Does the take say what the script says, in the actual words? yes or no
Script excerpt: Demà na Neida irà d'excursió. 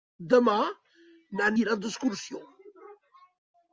no